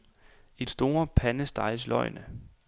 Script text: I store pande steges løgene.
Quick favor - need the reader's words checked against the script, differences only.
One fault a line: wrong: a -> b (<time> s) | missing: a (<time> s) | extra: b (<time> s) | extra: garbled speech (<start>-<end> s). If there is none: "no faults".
no faults